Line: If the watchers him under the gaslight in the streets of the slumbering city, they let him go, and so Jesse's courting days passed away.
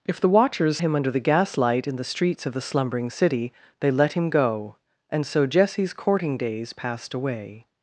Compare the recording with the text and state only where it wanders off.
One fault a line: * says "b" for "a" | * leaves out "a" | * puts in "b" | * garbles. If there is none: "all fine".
all fine